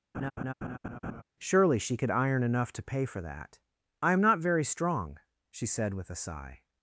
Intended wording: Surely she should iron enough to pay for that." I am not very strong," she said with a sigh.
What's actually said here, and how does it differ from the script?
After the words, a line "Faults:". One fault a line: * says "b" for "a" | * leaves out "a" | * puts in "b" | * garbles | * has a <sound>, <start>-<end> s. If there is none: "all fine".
Surely she could iron enough to pay for that." I am not very strong," she said with a sigh.
Faults:
* has a laugh, 0.1-1.2 s
* says "could" for "should"